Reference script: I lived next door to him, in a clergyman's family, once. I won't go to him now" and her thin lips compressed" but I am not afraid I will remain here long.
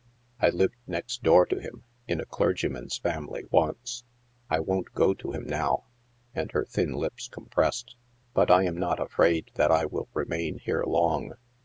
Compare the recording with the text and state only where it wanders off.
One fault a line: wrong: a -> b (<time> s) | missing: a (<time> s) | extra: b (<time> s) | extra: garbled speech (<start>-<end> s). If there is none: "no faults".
extra: that (9.5 s)